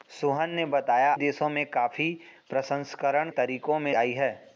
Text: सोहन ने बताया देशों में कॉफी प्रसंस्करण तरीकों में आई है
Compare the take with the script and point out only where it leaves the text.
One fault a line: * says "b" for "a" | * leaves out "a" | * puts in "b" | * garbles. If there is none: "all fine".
all fine